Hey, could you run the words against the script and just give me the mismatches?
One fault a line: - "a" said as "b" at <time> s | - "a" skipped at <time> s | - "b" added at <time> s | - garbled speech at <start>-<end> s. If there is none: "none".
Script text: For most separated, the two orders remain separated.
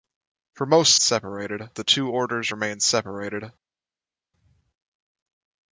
none